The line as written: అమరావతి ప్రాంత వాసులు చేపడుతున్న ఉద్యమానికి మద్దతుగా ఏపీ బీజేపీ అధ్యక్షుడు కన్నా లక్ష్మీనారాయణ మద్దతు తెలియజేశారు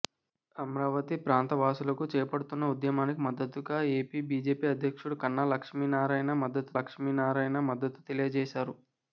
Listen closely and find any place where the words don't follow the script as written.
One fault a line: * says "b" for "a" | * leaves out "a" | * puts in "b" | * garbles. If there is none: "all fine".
* puts in "లక్ష్మీనారాయణ మద్దతు"